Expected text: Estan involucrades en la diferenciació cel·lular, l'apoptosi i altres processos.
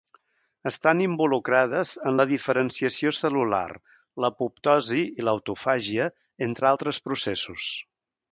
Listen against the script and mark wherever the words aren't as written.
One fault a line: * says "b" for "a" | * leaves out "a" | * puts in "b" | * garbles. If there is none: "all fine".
* puts in "l'autofàgia entre"